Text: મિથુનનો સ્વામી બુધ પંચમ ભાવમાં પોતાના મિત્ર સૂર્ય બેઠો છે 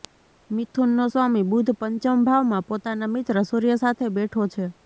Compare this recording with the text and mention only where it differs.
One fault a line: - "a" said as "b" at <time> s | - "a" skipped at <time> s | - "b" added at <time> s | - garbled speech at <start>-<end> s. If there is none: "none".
- "સાથે" added at 3.8 s